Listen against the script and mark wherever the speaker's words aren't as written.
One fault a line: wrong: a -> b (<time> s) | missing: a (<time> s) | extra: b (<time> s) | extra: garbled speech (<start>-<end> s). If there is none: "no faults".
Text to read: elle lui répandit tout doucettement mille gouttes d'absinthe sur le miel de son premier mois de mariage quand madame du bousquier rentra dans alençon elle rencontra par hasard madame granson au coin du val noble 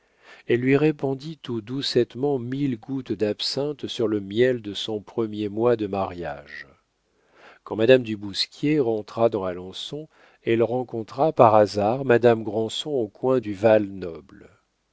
no faults